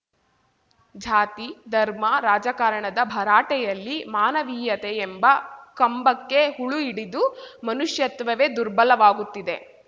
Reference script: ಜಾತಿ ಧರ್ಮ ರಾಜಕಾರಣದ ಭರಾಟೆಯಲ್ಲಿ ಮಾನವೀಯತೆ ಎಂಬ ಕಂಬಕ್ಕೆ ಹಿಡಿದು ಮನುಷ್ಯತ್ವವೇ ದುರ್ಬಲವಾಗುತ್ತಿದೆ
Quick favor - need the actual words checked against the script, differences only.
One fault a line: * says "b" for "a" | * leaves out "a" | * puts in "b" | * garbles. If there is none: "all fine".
* puts in "ಹುಳು"